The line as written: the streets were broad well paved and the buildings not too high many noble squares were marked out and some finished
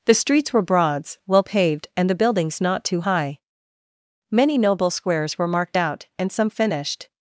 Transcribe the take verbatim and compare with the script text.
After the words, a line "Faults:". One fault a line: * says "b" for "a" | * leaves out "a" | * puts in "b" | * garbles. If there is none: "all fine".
the streets were broads well paved and the buildings not too high many noble squares were marked out and some finished
Faults:
* says "broads" for "broad"